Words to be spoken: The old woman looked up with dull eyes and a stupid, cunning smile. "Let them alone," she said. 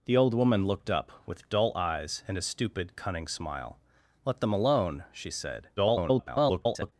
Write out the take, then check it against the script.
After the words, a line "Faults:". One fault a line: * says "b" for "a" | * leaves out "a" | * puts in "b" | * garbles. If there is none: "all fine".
The old woman looked up with dull eyes and a stupid, cunning smile. "Let them alone," she said. [garbled]
Faults:
* garbles